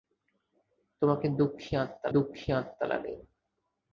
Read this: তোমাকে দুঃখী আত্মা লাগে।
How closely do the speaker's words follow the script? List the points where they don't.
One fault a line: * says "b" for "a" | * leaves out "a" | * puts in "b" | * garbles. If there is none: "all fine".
* puts in "দুঃখী আত্মা"